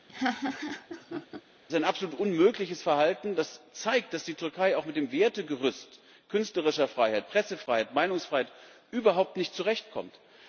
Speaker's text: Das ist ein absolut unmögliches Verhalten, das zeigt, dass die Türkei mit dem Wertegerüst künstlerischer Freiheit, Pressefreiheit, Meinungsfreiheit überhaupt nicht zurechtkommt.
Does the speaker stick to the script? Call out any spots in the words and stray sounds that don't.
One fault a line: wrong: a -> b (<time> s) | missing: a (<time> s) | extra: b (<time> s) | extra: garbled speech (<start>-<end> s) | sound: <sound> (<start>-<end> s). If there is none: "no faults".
sound: laugh (0.1-1.4 s)
extra: auch (4.7 s)